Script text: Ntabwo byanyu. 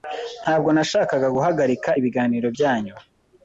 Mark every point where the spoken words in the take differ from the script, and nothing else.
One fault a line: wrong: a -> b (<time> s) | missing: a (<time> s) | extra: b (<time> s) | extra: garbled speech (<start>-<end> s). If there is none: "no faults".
extra: nashakaga guhagarika ibiganiro (0.8 s)